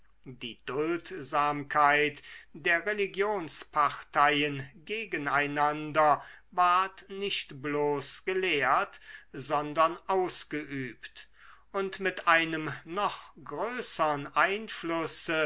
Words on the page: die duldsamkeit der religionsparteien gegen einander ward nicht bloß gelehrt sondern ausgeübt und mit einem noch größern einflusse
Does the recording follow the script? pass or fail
pass